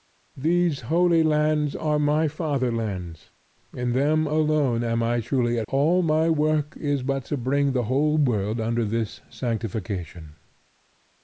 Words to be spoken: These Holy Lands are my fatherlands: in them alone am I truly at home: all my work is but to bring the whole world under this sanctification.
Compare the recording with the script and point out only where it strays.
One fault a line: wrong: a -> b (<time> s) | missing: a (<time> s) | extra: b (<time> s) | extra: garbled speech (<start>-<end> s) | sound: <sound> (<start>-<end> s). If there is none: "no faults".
missing: home (5.7 s)